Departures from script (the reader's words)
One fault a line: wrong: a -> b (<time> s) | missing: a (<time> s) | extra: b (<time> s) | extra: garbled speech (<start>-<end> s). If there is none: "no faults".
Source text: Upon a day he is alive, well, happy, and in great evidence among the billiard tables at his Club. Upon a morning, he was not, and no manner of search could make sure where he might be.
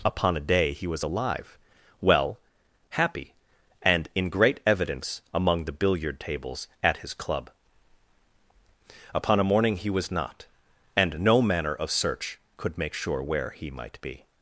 wrong: is -> was (0.9 s)